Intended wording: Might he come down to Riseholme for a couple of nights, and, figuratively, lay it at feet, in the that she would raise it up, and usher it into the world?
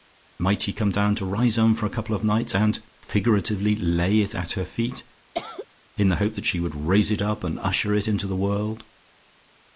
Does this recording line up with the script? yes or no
no